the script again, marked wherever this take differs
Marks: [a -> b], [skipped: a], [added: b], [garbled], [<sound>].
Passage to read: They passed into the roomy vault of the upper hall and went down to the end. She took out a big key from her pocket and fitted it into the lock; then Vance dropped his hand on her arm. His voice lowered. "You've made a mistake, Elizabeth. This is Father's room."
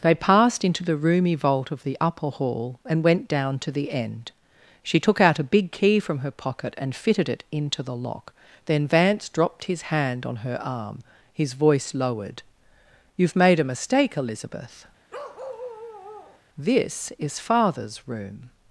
They passed into the roomy vault of the upper hall and went down to the end. She took out a big key from her pocket and fitted it into the lock; then Vance dropped his hand on her arm. His voice lowered. "You've made a mistake, Elizabeth. [bark] This is Father's room."